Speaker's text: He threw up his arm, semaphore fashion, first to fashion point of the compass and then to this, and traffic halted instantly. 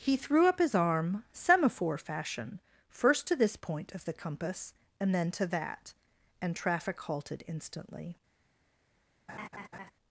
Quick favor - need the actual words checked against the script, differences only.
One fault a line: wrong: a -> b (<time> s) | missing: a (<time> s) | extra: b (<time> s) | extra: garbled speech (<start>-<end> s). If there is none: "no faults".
wrong: fashion -> this (3.3 s)
wrong: this -> that (5.5 s)